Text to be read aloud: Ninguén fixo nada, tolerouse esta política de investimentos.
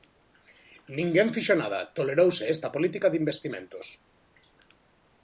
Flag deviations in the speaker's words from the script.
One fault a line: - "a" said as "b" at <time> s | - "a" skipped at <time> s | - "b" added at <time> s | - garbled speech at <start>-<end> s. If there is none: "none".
none